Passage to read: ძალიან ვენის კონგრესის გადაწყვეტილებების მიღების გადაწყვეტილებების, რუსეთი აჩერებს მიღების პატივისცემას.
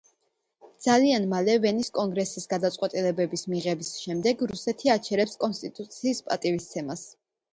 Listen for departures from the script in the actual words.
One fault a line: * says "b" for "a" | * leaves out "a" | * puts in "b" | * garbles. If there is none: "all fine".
* puts in "მალე"
* says "შემდეგ" for "გადაწყვეტილებების"
* says "კონსტიტუციის" for "მიღების"